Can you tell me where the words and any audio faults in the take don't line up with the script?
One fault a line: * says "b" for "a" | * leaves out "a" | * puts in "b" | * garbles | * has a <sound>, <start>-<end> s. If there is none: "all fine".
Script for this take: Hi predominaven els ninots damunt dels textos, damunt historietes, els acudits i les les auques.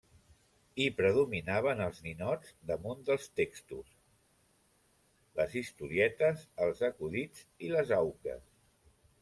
* says "les" for "damunt"
* leaves out "les"